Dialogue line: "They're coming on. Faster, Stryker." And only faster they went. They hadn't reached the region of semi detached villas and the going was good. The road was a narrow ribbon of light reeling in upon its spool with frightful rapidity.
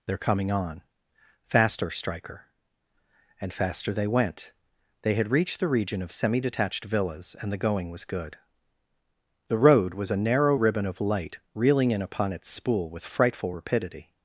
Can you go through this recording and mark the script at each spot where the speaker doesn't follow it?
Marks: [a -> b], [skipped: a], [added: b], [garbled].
"They're coming on. Faster, Stryker." And [skipped: only] faster they went. They [hadn't -> had] reached the region of semi detached villas and the going was good. The road was a narrow ribbon of light reeling in upon its spool with frightful rapidity.